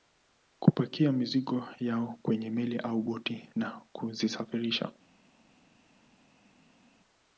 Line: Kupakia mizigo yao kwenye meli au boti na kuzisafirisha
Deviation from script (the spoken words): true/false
false